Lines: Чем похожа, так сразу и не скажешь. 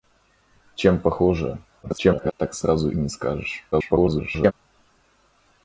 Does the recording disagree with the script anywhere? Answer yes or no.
yes